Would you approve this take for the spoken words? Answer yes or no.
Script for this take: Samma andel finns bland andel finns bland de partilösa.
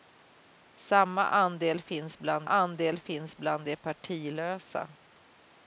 yes